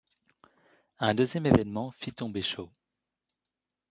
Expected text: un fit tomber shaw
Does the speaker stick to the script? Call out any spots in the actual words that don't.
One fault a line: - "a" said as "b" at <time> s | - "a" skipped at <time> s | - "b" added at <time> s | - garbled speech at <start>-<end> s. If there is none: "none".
- "deuxième événement" added at 1.1 s